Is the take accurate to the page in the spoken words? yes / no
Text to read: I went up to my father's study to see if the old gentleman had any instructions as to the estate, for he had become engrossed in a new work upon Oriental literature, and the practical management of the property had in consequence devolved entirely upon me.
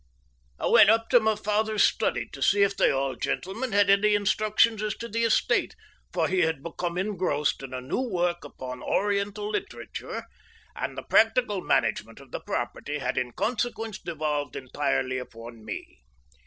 yes